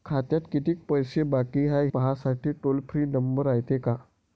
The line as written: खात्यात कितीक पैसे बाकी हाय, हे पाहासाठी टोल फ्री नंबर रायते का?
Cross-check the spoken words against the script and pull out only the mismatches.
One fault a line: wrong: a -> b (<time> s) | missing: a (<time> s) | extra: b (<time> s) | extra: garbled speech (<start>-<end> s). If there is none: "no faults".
missing: हे (1.9 s)